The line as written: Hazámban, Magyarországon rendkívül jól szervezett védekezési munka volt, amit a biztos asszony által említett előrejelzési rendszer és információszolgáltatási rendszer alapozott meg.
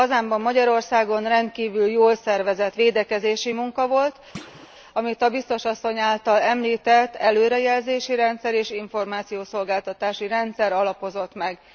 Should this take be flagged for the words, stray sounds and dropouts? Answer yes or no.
yes